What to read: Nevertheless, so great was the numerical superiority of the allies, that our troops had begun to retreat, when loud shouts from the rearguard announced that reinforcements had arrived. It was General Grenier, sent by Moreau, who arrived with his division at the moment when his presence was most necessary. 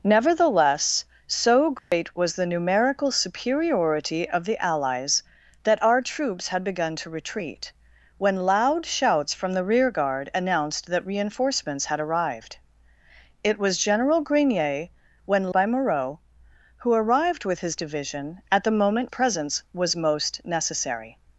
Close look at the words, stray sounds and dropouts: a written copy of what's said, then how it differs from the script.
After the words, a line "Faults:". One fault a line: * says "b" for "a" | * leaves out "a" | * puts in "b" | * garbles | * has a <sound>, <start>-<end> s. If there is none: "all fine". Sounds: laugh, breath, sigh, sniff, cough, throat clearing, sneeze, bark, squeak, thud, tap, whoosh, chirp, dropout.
Nevertheless, so great was the numerical superiority of the allies, that our troops had begun to retreat, when loud shouts from the rearguard announced that reinforcements had arrived. It was General Grenier, when by Moreau, who arrived with his division at the moment presence was most necessary.
Faults:
* has a dropout, 1.8-1.9 s
* says "when" for "sent"
* leaves out "when his"